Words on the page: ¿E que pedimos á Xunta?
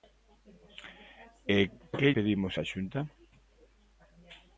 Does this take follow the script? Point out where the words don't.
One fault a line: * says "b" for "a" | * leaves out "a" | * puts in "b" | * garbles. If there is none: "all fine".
all fine